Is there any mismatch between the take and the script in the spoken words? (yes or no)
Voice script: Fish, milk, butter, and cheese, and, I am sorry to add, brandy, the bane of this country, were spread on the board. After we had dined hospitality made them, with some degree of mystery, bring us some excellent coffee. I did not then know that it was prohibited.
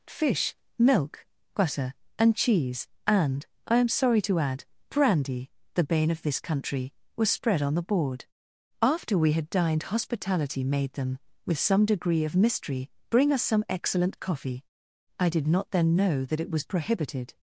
yes